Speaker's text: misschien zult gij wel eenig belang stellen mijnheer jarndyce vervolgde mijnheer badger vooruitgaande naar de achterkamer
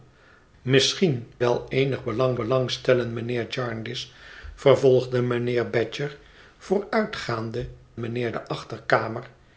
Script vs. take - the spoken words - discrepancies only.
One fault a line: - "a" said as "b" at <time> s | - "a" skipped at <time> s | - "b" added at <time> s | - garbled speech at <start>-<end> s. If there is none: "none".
- "zult gij" skipped at 1.3 s
- "belang" added at 2.3 s
- "naar" said as "mijnheer" at 8.0 s